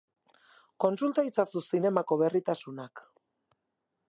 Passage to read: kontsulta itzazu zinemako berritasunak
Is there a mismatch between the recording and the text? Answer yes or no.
no